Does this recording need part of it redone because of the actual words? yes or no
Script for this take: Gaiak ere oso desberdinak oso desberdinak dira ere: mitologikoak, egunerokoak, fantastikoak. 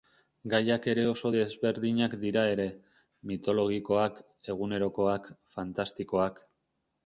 yes